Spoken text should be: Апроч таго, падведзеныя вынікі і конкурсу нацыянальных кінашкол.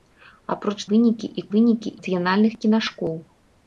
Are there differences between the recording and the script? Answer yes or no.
yes